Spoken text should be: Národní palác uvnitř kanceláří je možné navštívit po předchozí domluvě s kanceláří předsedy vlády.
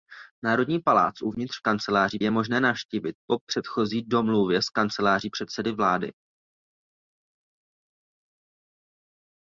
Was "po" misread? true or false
false